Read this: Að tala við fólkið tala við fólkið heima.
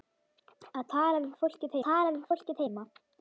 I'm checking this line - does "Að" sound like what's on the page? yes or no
yes